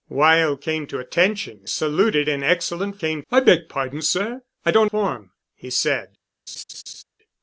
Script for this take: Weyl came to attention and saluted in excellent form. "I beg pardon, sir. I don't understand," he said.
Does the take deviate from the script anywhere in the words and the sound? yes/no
yes